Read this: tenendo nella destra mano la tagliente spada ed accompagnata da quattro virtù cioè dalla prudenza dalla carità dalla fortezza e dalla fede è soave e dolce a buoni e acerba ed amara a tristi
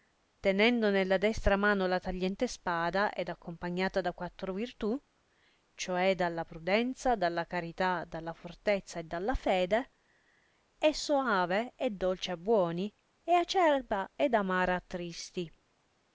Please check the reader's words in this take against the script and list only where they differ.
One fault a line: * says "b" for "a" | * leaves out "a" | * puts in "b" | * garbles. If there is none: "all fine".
all fine